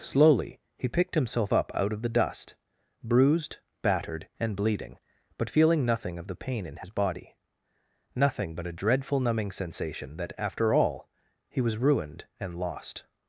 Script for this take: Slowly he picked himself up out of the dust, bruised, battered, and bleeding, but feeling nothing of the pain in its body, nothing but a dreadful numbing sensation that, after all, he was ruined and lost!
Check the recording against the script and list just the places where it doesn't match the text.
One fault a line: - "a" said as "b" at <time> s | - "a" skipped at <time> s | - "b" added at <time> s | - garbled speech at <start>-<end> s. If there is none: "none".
- "its" said as "his" at 6.8 s